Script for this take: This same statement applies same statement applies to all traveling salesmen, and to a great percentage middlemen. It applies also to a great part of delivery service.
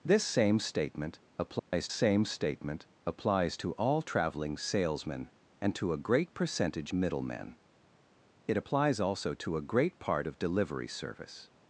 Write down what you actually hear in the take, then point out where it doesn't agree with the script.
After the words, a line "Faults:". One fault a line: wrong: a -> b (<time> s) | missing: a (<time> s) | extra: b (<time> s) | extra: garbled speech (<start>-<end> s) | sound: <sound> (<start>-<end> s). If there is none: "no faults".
This same statement applies same statement applies to all traveling salesmen, and to a great percentage middlemen. It applies also to a great part of delivery service.
Faults:
sound: dropout (1.6-1.7 s)